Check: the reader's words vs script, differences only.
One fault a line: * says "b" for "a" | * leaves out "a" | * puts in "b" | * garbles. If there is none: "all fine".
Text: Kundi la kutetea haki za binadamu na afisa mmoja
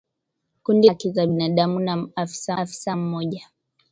* leaves out "la kutetea"
* puts in "afisa"